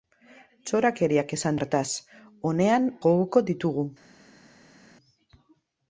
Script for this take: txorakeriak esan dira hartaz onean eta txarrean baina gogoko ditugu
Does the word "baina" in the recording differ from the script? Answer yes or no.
yes